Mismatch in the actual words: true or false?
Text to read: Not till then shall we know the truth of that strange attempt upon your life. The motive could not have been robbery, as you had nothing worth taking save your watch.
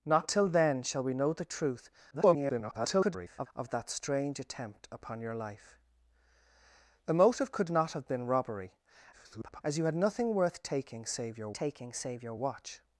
true